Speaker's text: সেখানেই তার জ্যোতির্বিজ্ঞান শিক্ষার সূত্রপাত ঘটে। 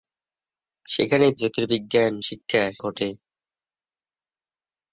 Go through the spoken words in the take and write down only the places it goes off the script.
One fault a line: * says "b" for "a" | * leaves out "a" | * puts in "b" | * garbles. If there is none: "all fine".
* leaves out "তার"
* leaves out "সূত্রপাত"